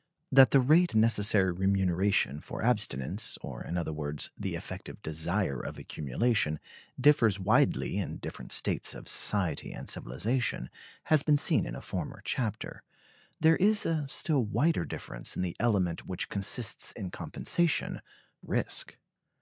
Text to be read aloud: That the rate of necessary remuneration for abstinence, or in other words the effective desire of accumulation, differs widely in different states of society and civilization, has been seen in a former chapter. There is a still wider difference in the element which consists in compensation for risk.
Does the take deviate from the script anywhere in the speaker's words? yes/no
yes